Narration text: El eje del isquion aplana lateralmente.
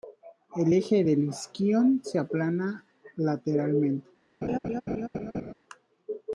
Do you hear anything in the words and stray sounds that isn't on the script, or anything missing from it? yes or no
yes